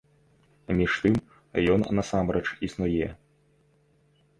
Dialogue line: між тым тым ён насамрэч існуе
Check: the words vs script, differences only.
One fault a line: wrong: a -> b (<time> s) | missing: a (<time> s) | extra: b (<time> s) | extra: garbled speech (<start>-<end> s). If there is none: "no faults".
missing: тым (1.1 s)